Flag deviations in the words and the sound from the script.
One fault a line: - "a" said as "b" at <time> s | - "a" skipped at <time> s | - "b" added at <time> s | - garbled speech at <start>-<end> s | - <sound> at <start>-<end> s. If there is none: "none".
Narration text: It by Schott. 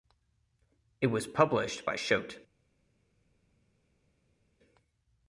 - "was published" added at 1.1 s